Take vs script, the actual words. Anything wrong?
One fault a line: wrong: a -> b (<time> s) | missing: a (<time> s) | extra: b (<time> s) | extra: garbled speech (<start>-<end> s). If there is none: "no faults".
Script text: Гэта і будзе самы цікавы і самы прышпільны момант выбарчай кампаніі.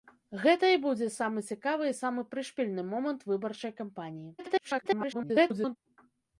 extra: garbled speech (4.4-5.8 s)